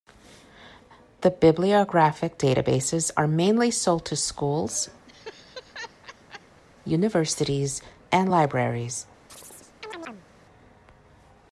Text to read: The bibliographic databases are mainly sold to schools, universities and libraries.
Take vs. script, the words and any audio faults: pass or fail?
fail